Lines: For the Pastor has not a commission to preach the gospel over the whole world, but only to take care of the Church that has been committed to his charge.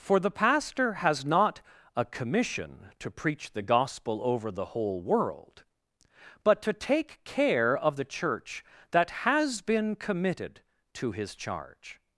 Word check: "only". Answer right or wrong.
wrong